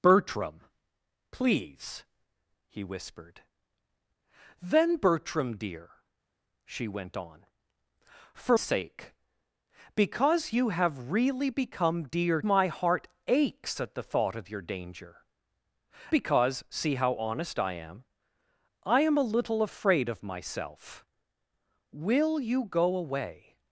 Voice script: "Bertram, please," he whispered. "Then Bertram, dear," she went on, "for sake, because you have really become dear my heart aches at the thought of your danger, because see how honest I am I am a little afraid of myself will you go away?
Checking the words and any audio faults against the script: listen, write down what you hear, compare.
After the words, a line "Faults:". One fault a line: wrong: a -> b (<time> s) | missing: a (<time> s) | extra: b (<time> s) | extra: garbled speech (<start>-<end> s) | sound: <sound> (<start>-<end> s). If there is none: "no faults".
"Bertram, please," he whispered. "Then Bertram, dear," she went on, "for sake, because you have really become dear my heart aches at the thought of your danger, because see how honest I am I am a little afraid of myself will you go away?
Faults:
no faults